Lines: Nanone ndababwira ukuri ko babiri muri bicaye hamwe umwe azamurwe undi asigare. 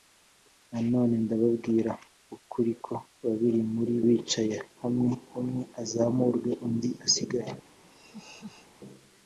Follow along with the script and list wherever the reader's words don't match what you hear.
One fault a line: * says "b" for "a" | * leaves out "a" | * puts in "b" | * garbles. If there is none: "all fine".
all fine